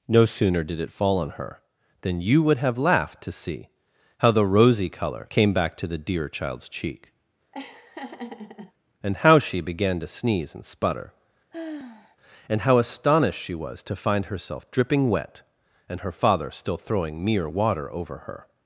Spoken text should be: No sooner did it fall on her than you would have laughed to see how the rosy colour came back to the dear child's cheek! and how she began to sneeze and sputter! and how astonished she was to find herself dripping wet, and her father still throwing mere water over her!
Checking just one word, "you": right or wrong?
right